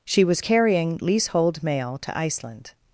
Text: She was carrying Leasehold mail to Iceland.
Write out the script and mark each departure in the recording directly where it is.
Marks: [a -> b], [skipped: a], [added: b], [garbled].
She was carrying Leasehold mail to Iceland.